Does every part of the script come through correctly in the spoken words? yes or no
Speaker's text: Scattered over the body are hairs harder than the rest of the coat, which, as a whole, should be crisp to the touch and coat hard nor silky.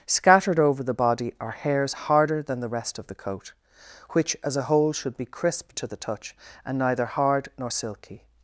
no